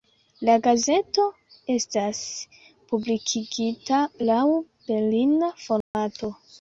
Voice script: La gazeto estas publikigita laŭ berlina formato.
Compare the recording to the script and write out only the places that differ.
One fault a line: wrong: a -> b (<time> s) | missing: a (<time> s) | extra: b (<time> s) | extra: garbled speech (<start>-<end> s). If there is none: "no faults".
no faults